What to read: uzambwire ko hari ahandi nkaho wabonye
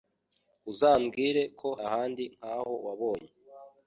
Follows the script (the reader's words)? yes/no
no